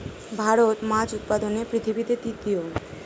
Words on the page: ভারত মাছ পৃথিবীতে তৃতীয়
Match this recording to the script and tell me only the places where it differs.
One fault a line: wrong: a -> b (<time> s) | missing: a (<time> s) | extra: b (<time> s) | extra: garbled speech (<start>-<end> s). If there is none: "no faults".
extra: উৎপাদনে (1.1 s)